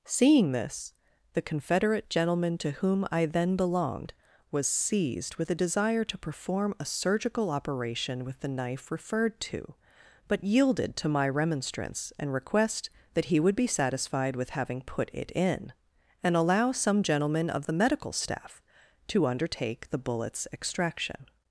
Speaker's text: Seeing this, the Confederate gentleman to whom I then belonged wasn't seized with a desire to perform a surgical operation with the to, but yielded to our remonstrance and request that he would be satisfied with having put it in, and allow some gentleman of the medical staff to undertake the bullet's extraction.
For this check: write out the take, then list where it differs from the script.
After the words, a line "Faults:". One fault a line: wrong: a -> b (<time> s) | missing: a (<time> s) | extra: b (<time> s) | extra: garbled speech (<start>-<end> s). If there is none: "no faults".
Seeing this, the Confederate gentleman to whom I then belonged was seized with a desire to perform a surgical operation with the knife referred to, but yielded to my remonstrance and request that he would be satisfied with having put it in, and allow some gentleman of the medical staff to undertake the bullet's extraction.
Faults:
wrong: wasn't -> was (4.5 s)
extra: knife referred (8.5 s)
wrong: our -> my (11.1 s)